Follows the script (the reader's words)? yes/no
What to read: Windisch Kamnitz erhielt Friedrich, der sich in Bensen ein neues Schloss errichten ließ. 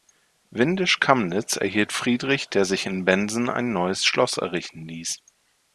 yes